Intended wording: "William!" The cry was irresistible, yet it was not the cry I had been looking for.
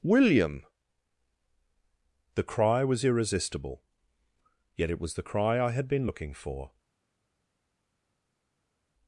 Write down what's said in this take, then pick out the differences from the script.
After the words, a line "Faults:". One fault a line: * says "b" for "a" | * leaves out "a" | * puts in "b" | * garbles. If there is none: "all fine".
"William!" The cry was irresistible, yet it was the cry I had been looking for.
Faults:
* leaves out "not"